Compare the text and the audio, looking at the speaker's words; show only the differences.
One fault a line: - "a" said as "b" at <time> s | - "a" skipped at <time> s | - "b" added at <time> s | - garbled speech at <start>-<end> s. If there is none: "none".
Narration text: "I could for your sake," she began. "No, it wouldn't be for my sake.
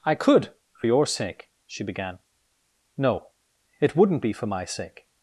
none